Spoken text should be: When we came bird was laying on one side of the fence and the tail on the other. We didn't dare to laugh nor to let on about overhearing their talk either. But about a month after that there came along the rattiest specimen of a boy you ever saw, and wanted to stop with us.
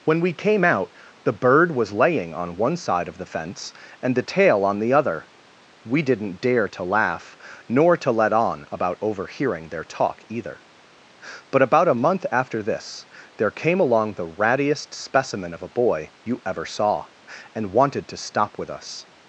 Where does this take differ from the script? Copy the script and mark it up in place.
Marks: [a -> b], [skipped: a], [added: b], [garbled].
When we came [added: out the] bird was laying on one side of the fence and the tail on the other. We didn't dare to laugh nor to let on about overhearing their talk either. But about a month after [that -> this] there came along the rattiest specimen of a boy you ever saw, and wanted to stop with us.